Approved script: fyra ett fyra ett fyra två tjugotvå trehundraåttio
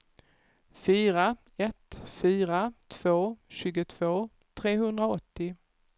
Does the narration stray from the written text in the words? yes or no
yes